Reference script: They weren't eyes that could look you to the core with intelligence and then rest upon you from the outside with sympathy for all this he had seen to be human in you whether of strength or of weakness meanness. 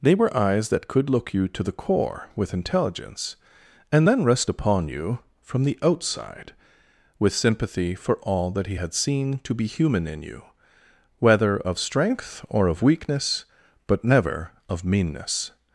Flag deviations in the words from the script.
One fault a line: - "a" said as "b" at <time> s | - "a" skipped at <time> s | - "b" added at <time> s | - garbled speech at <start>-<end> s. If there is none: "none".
- "weren't" said as "were" at 0.1 s
- "this" said as "that" at 8.5 s
- "but never of" added at 13.9 s